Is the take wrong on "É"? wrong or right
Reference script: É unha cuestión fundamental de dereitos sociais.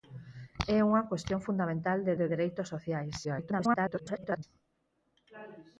right